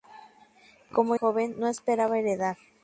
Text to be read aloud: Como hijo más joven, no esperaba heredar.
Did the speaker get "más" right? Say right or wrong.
wrong